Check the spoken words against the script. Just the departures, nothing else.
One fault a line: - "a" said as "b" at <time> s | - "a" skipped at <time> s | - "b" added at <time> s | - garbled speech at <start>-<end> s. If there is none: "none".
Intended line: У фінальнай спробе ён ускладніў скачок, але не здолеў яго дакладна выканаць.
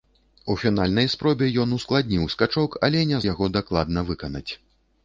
- "здолеў" skipped at 3.2 s